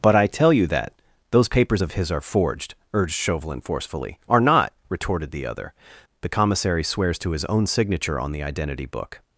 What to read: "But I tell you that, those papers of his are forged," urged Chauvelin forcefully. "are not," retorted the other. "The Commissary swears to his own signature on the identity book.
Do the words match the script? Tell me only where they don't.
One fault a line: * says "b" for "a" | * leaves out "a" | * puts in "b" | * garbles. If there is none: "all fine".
all fine